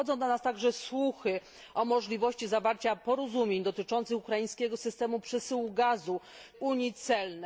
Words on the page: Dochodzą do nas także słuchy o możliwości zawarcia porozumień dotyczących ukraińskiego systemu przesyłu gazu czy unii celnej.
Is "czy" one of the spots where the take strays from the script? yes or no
yes